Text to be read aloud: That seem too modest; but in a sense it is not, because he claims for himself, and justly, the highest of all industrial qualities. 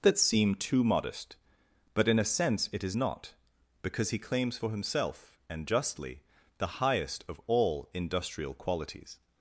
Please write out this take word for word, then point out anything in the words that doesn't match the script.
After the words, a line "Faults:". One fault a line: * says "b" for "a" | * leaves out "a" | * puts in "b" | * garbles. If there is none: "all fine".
That seem too modest; but in a sense it is not, because he claims for himself, and justly, the highest of all industrial qualities.
Faults:
all fine